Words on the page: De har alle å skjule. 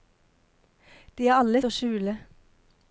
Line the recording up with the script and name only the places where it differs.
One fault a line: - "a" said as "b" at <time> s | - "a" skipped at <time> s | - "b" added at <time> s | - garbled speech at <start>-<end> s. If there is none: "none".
none